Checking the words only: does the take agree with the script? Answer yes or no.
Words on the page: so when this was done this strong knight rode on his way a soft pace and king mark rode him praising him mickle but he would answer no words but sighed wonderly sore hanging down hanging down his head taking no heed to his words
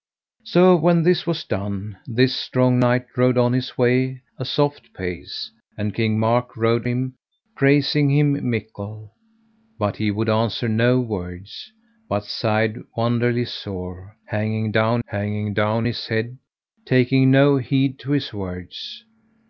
yes